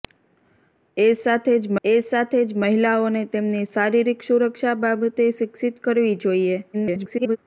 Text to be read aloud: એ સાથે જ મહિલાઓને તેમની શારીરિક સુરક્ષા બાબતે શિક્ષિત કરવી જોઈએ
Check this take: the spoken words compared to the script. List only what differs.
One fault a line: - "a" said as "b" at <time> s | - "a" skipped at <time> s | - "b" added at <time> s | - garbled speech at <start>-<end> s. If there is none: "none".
- "એ સાથે જ" added at 1.8 s
- garbled speech at 6.7-7.4 s